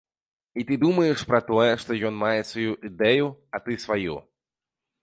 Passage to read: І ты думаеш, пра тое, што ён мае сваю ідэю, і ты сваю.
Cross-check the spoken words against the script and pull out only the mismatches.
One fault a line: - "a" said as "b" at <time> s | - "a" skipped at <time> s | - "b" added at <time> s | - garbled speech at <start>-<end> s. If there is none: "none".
- "і" said as "а" at 3.5 s